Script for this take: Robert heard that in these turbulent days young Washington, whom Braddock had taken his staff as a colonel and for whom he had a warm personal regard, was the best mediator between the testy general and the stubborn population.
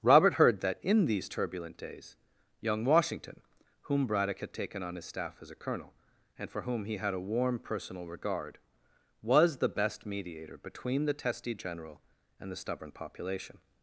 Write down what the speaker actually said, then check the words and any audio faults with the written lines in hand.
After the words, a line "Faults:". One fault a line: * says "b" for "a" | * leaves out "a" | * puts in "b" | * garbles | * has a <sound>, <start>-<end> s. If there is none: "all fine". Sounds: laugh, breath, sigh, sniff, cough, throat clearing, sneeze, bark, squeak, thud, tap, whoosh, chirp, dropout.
Robert heard that in these turbulent days young Washington, whom Braddock had taken on his staff as a colonel and for whom he had a warm personal regard, was the best mediator between the testy general and the stubborn population.
Faults:
* puts in "on"